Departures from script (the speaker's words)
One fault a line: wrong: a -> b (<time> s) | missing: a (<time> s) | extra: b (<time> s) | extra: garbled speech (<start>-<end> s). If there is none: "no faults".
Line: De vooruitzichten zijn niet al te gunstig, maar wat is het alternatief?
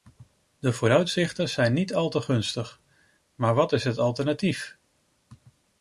no faults